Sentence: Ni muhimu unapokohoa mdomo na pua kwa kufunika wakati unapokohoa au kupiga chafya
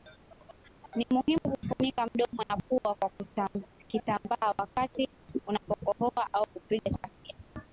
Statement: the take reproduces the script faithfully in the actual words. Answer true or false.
false